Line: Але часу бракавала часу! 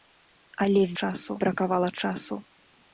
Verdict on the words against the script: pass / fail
pass